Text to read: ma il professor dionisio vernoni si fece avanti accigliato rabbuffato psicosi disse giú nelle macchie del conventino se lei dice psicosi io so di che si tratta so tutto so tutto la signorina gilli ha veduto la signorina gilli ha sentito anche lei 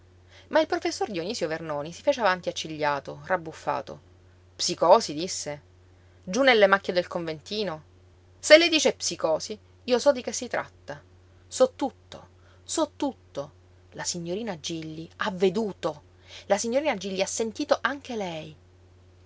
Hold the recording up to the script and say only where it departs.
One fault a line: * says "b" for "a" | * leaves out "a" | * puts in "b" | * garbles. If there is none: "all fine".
all fine